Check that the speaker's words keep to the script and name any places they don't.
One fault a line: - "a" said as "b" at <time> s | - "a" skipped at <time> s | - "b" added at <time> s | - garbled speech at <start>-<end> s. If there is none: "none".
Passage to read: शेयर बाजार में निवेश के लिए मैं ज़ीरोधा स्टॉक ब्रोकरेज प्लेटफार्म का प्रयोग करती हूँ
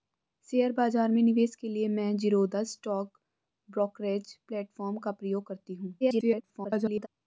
- garbled speech at 6.0-7.1 s